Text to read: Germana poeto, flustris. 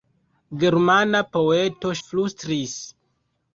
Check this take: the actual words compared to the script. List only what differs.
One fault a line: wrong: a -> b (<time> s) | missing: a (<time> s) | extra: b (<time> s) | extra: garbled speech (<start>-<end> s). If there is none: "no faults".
no faults